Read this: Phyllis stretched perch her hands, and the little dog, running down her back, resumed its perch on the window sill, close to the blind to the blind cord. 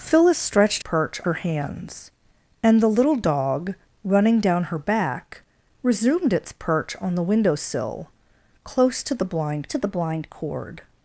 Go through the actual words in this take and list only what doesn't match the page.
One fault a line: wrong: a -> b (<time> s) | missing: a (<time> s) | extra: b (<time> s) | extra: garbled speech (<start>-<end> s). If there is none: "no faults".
no faults